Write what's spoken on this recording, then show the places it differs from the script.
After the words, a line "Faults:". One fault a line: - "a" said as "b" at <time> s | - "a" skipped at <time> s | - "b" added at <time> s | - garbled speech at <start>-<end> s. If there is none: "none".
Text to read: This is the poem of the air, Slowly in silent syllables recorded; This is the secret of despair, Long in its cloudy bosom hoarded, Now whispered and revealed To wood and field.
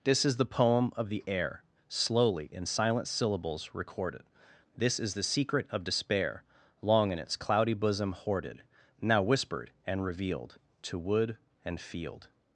This is the poem of the air, Slowly in silent syllables recorded; This is the secret of despair, Long in its cloudy bosom hoarded, Now whispered and revealed To wood and field.
Faults:
none